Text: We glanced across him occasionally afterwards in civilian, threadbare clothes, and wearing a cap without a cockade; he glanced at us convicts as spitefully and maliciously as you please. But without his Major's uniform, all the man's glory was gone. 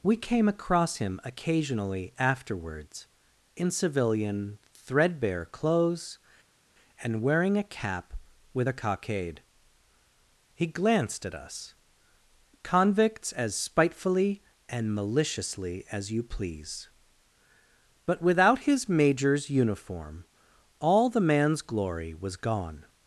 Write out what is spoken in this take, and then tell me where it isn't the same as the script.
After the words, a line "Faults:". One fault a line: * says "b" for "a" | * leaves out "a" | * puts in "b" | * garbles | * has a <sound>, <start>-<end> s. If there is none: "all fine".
We came across him occasionally afterwards in civilian, threadbare clothes, and wearing a cap with a cockade; he glanced at us convicts as spitefully and maliciously as you please. But without his Major's uniform, all the man's glory was gone.
Faults:
* says "came" for "glanced"
* says "with" for "without"